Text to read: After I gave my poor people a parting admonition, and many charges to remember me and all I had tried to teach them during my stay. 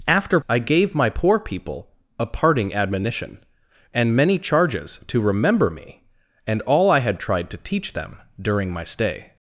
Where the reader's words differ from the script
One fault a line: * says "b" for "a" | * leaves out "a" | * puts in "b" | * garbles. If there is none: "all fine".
all fine